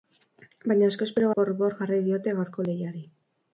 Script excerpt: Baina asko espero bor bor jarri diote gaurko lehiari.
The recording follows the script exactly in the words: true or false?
true